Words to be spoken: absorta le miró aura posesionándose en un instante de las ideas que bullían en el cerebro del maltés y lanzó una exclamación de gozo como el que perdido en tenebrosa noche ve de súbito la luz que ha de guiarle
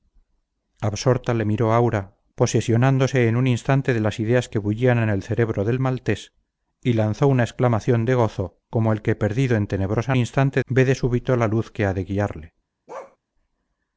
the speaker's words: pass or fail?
fail